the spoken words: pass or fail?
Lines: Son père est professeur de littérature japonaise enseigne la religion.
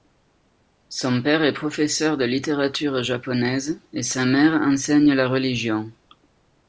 fail